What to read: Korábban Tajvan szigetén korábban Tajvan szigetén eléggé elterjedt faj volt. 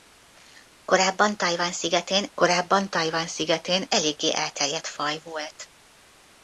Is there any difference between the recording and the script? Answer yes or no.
no